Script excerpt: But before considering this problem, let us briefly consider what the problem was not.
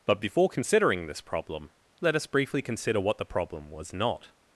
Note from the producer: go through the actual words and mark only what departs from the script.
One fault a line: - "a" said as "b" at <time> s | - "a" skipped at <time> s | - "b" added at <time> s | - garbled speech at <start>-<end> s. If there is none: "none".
none